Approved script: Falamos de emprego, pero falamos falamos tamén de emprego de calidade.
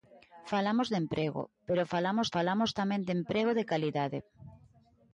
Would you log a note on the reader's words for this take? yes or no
no